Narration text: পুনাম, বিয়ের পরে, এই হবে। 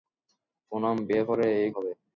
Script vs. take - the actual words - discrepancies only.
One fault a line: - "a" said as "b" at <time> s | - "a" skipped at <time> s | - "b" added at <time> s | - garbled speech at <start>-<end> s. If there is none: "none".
none